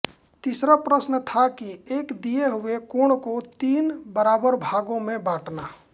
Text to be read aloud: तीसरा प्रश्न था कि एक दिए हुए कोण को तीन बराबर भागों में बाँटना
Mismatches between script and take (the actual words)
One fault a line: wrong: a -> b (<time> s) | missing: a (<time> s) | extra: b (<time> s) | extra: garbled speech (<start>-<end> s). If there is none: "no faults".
no faults